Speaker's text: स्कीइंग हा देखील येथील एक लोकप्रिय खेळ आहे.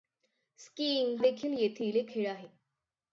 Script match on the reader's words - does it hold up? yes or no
no